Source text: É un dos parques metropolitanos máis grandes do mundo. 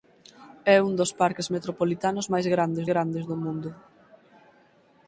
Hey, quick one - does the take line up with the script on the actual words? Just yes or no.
no